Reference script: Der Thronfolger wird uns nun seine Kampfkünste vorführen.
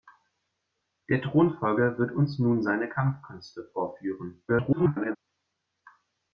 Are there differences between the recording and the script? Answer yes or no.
yes